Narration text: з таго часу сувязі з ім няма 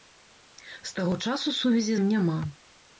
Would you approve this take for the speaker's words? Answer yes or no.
no